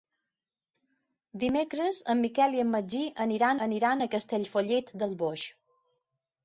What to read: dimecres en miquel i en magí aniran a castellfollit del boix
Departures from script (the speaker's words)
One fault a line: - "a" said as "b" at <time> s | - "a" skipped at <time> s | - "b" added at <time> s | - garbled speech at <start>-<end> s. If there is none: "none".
- "aniran" added at 3.7 s